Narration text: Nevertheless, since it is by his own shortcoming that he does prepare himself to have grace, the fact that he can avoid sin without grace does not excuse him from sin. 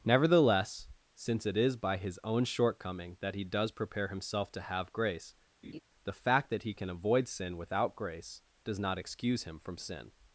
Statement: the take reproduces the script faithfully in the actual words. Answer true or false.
true